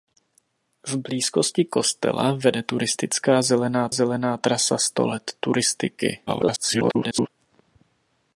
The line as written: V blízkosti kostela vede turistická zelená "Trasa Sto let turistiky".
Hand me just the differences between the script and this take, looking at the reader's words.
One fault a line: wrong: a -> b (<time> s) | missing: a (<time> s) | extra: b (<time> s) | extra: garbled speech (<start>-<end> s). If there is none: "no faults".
extra: zelená (3.9 s)
extra: garbled speech (6.3-7.3 s)